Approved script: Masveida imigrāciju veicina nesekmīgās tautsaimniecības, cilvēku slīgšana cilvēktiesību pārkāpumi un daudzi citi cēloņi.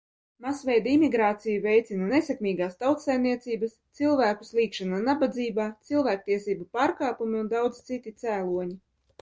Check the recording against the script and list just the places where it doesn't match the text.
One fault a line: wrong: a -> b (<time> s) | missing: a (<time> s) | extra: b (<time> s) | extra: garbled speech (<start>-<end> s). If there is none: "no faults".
extra: nabadzībā (5.1 s)